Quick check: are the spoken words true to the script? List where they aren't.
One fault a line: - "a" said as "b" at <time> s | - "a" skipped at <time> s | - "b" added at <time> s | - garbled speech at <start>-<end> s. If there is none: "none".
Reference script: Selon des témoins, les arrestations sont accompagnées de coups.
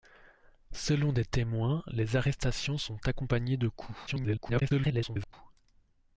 - garbled speech at 4.1-5.3 s